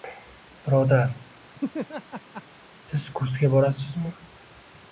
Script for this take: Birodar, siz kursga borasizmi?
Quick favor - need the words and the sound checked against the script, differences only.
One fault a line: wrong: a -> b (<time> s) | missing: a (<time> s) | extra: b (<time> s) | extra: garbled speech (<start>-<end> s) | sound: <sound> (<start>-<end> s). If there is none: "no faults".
sound: laugh (1.5-2.4 s)